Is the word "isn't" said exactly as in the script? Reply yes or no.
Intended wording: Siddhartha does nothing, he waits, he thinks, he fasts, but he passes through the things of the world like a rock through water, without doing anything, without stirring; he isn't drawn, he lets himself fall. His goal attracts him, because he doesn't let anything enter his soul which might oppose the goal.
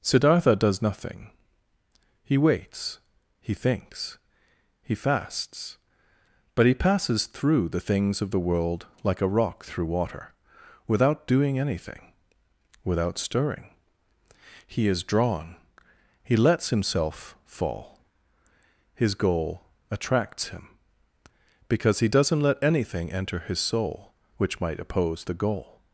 no